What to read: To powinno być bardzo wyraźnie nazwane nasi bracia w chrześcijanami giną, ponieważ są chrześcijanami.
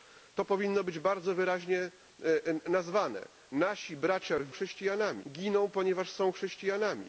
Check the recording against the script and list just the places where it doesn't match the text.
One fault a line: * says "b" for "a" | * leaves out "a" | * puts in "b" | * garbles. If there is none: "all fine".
all fine